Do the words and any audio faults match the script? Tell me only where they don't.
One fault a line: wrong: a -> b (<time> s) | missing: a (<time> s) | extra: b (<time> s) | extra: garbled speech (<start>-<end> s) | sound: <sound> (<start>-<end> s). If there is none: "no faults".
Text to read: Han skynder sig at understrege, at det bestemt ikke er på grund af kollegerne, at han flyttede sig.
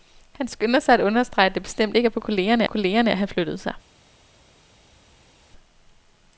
wrong: grund -> kollegerne (2.2 s)